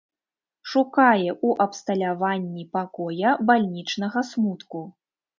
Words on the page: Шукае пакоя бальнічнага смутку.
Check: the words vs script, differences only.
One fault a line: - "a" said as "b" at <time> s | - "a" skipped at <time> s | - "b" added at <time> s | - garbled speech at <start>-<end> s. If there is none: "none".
- "ў абсталяванні" added at 1.3 s